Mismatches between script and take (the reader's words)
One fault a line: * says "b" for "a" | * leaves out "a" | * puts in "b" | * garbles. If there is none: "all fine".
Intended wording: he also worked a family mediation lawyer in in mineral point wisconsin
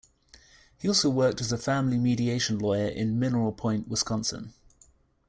* puts in "as"
* leaves out "in"